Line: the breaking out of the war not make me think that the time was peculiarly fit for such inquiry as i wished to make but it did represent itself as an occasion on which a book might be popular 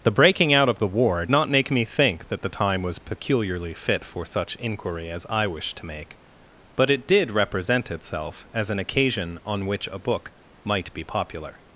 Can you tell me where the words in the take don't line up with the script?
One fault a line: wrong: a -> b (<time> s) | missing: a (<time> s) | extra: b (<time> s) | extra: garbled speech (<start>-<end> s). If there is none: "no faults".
no faults